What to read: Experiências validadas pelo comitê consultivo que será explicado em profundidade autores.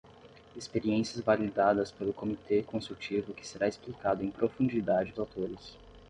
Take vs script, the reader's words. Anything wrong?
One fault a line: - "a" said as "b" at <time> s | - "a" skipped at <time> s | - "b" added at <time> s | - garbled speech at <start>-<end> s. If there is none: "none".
none